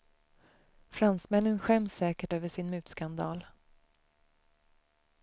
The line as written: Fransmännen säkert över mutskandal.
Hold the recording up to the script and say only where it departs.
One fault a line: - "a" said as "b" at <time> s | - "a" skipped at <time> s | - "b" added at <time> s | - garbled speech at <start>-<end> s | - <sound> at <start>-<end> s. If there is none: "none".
- "skäms" added at 1.6 s
- "sin" added at 2.5 s